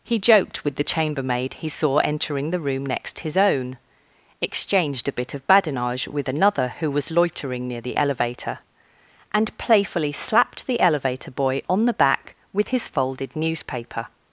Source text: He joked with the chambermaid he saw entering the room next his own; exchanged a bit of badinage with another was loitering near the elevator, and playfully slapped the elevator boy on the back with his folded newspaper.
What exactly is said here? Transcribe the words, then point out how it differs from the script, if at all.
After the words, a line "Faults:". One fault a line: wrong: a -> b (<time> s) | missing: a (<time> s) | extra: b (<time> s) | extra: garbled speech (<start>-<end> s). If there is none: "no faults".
He joked with the chambermaid he saw entering the room next his own; exchanged a bit of badinage with another who was loitering near the elevator, and playfully slapped the elevator boy on the back with his folded newspaper.
Faults:
extra: who (6.8 s)